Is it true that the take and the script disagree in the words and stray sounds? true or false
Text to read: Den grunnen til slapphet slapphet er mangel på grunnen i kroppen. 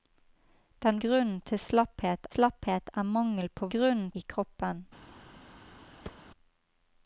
true